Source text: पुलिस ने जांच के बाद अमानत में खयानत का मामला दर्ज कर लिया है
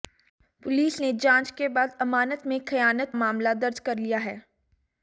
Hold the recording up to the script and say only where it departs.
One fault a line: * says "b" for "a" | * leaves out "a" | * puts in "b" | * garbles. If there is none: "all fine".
* leaves out "का"